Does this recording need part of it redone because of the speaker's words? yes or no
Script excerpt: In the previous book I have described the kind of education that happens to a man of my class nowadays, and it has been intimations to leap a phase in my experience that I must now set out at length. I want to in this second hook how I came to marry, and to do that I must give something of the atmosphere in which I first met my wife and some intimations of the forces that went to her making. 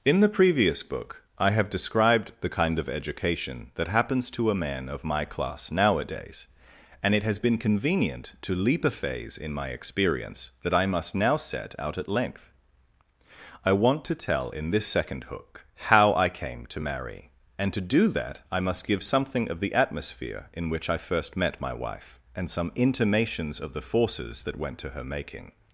yes